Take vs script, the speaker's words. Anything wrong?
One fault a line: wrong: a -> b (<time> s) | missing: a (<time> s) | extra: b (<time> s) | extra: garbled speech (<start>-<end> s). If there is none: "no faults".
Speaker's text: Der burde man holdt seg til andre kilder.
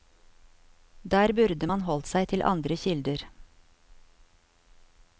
no faults